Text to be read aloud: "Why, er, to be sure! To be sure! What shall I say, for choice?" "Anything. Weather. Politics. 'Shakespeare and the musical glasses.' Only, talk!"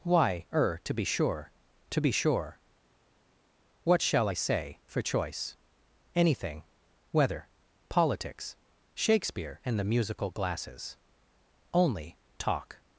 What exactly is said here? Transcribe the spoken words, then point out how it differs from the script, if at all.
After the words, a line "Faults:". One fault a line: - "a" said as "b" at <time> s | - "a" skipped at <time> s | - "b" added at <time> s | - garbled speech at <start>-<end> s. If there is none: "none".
"Why, er, to be sure! To be sure! What shall I say, for choice?" "Anything. Weather. Politics. 'Shakespeare and the musical glasses.' Only, talk!"
Faults:
none